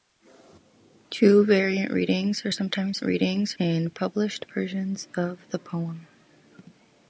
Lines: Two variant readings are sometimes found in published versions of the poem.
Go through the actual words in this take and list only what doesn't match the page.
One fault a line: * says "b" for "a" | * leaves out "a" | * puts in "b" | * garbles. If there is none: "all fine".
* says "readings" for "found"